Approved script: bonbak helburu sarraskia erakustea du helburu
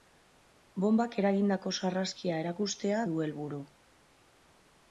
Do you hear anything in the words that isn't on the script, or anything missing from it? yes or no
yes